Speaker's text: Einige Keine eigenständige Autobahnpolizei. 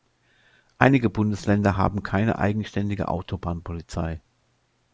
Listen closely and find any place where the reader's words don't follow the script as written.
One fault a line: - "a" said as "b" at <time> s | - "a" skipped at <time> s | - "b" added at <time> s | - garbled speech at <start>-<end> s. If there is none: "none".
- "Bundesländer haben" added at 1.1 s